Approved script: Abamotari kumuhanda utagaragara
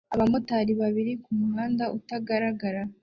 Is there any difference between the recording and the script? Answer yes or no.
yes